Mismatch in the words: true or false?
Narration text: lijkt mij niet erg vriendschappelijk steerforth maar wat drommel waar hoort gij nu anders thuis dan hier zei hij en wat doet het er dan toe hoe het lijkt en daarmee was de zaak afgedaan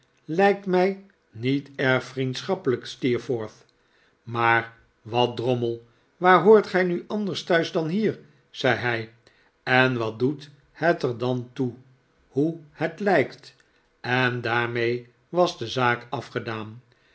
false